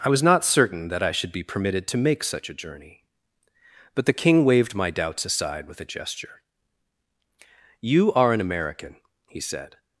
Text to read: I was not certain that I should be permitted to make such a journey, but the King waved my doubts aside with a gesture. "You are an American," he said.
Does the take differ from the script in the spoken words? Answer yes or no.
no